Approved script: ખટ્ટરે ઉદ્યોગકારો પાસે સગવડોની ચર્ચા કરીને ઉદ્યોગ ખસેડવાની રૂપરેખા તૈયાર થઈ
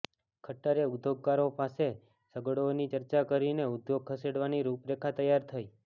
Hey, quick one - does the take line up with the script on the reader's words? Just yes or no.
yes